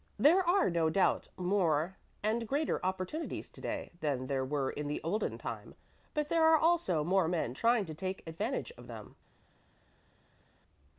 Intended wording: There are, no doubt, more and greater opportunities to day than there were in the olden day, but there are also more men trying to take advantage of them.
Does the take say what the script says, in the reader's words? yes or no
no